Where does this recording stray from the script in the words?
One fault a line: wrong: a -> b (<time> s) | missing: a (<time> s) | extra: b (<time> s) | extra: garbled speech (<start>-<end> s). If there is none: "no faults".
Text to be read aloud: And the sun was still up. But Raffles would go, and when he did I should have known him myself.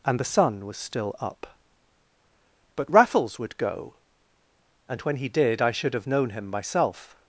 no faults